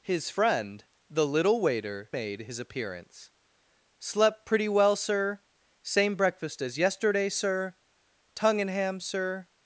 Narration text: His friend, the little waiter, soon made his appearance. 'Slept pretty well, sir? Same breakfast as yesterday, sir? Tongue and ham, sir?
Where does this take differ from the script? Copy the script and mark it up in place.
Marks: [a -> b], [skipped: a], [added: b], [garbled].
His friend, the little waiter, [skipped: soon] made his appearance. 'Slept pretty well, sir? Same breakfast as yesterday, sir? Tongue and ham, sir?